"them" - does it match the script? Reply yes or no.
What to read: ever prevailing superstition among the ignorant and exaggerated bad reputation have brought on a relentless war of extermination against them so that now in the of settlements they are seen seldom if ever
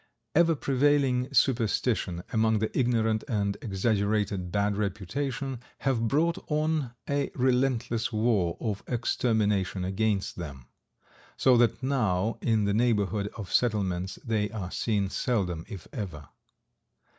yes